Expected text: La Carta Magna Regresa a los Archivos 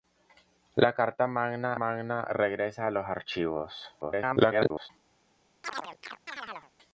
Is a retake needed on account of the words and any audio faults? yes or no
yes